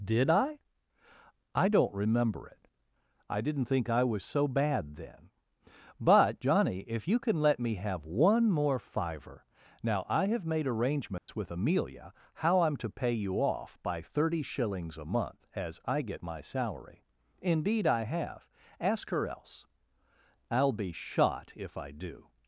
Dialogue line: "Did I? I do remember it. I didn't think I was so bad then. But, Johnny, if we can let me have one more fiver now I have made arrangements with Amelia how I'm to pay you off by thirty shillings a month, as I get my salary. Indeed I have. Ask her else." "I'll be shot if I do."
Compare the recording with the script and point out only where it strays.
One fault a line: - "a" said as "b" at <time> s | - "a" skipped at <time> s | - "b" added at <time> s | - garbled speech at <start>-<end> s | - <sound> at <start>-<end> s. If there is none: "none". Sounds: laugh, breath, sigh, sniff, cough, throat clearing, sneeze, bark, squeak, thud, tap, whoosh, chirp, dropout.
- "do" said as "don't" at 1.7 s
- "we" said as "you" at 7.1 s
- dropout at 11.2-11.3 s